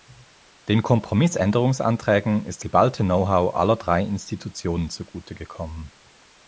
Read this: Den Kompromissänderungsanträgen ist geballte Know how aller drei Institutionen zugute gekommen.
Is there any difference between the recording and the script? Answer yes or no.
no